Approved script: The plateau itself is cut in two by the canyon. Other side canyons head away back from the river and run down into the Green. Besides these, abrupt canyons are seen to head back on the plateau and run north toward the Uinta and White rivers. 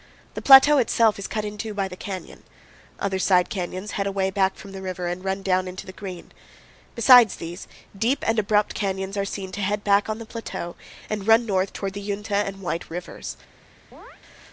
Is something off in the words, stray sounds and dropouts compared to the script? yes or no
yes